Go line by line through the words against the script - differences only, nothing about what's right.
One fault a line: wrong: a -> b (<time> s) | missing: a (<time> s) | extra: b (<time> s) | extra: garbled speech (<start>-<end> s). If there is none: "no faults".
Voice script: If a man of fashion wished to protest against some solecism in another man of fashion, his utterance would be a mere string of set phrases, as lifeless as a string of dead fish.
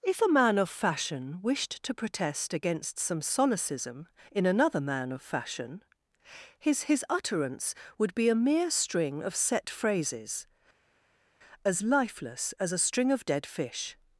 extra: his (6.8 s)